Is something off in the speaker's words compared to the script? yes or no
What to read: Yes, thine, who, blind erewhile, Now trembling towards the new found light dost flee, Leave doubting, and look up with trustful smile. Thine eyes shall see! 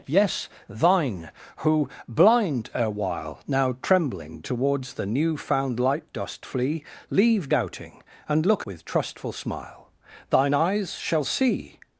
yes